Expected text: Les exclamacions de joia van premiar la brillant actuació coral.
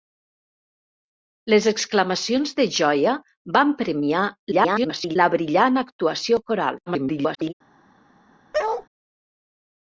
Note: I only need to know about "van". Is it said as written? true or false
true